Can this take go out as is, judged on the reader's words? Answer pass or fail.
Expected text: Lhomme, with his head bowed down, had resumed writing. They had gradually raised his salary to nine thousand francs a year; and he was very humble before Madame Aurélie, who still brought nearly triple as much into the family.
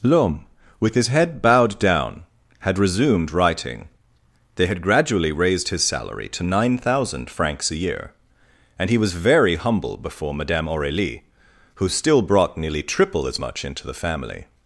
pass